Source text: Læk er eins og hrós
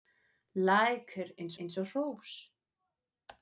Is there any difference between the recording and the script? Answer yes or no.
yes